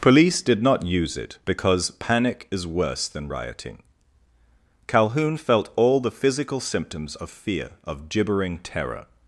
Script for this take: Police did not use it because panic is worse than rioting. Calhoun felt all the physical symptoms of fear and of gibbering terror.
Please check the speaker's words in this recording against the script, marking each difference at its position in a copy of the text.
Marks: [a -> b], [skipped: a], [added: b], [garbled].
Police did not use it because panic is worse than rioting. Calhoun felt all the physical symptoms of fear [skipped: and] of gibbering terror.